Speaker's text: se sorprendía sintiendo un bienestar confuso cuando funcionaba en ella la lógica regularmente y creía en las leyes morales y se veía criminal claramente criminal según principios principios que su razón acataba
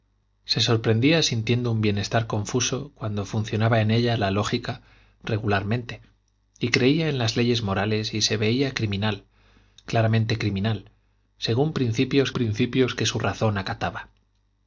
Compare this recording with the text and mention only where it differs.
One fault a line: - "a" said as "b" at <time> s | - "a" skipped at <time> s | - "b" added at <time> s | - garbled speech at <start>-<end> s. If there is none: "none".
none